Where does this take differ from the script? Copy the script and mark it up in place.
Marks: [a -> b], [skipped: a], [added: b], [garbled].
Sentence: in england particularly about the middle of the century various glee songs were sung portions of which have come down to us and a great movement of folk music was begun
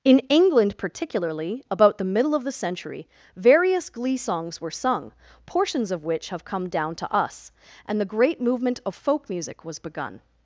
in england particularly about the middle of the century various glee songs were sung portions of which have come down to us and [a -> the] great movement of folk music was begun